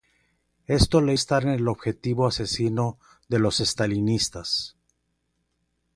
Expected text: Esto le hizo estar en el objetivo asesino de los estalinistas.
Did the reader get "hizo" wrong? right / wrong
wrong